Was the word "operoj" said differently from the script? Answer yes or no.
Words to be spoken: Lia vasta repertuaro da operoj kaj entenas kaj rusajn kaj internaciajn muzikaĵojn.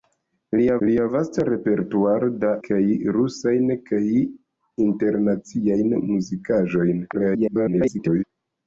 yes